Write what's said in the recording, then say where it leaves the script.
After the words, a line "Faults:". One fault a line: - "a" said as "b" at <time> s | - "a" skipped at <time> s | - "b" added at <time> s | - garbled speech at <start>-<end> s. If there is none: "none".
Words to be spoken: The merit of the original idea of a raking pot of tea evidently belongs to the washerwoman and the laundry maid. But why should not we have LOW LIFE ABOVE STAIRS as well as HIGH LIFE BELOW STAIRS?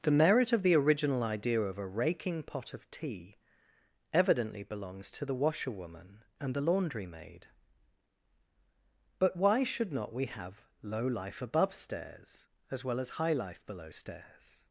The merit of the original idea of a raking pot of tea evidently belongs to the washerwoman and the laundry maid. But why should not we have LOW LIFE ABOVE STAIRS as well as HIGH LIFE BELOW STAIRS?
Faults:
none